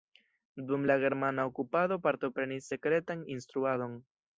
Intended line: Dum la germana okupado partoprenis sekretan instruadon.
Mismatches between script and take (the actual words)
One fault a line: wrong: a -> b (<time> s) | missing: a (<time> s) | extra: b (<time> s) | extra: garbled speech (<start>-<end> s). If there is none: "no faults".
no faults